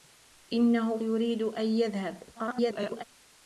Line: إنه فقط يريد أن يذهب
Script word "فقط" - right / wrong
wrong